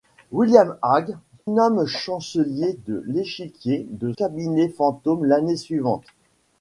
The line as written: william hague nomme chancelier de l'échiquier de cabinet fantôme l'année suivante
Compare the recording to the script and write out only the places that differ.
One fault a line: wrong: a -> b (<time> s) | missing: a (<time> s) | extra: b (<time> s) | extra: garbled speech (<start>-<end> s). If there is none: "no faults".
no faults